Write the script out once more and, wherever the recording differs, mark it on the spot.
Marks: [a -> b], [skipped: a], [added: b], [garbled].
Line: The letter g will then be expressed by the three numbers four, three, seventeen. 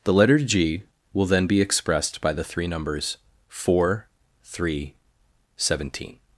The letter g will then be expressed by the three numbers four, three, seventeen.